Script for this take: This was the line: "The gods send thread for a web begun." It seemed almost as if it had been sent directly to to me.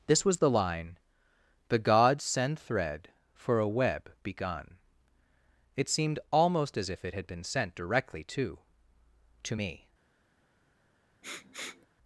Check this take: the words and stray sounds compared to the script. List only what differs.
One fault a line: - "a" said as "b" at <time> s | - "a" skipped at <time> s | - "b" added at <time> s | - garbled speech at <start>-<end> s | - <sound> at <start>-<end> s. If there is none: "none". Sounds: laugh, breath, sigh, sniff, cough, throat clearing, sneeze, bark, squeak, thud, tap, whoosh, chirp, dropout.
- sniff at 11.2-11.9 s